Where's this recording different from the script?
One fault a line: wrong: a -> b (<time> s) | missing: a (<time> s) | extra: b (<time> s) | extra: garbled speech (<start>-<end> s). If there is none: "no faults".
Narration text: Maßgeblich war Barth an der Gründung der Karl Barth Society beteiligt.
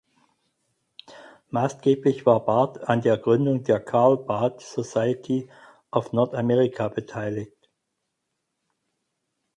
extra: of North America (5.9 s)